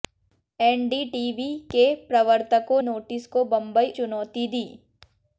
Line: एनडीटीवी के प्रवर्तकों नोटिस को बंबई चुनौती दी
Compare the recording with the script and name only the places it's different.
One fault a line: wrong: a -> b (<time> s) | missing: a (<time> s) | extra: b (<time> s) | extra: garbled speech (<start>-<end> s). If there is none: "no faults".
no faults